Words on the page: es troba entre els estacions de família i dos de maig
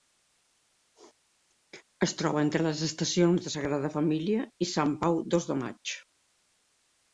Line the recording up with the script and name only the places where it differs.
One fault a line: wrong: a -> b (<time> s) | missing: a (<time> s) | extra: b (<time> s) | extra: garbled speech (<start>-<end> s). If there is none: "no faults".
wrong: els -> les (2.7 s)
extra: sagrada (3.6 s)
extra: sant pau (4.8 s)